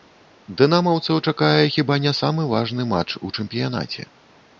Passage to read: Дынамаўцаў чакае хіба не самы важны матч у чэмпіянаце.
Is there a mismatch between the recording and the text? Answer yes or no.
no